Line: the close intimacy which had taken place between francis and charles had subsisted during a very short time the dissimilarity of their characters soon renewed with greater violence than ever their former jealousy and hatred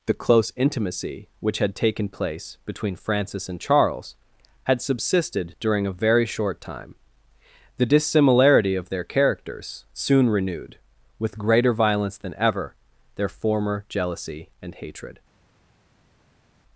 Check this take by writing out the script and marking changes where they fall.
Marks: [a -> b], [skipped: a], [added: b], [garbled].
the close intimacy which had taken place between francis and charles had subsisted during a very short time the dissimilarity of their characters soon renewed with greater violence than ever their former jealousy and hatred